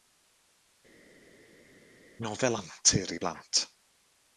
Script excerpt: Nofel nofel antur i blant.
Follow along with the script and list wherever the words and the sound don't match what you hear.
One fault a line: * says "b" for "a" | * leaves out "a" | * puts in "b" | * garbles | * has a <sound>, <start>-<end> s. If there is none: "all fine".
* leaves out "nofel"